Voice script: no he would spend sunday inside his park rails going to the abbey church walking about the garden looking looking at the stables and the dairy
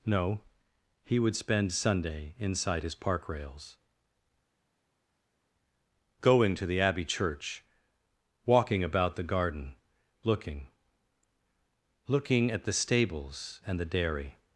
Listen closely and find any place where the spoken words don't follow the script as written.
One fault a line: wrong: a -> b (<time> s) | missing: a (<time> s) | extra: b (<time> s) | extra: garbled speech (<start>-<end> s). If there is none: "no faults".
no faults